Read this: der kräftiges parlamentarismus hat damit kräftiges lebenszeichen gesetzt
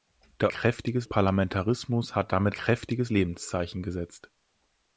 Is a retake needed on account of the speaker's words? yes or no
no